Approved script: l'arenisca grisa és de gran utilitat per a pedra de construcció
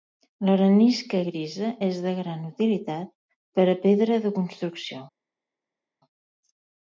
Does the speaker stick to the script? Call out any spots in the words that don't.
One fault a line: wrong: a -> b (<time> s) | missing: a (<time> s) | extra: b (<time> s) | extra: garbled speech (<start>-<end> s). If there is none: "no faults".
no faults